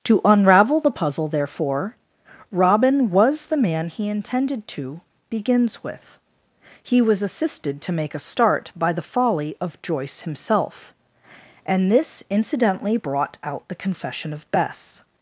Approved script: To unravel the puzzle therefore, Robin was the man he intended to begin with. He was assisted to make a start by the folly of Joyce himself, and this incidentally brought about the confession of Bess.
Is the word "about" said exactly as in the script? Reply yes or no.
no